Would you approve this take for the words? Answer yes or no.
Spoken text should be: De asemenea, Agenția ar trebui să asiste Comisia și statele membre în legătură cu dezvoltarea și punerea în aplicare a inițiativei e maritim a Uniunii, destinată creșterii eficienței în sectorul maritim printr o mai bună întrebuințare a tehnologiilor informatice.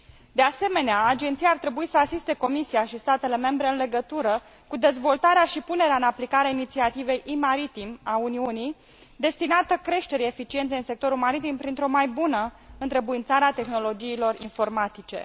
yes